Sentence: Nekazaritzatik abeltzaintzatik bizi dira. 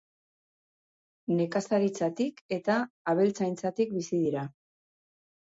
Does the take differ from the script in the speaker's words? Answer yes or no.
yes